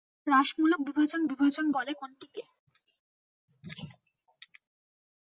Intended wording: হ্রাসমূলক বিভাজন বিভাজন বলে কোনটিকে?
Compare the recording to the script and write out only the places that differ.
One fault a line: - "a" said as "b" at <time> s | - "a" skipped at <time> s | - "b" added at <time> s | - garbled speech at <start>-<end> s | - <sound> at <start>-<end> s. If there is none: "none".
none